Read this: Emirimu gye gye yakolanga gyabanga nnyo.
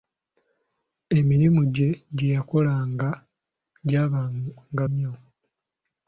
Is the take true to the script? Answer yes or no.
yes